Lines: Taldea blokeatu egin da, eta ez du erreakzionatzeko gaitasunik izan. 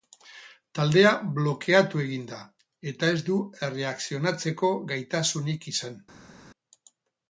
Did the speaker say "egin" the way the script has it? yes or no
yes